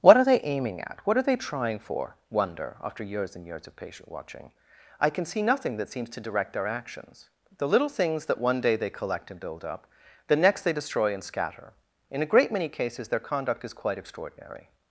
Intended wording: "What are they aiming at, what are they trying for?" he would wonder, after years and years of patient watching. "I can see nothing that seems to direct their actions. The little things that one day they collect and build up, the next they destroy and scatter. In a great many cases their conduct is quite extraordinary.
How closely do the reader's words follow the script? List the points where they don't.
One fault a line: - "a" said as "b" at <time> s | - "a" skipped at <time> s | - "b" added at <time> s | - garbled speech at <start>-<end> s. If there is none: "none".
- "he would" skipped at 2.1 s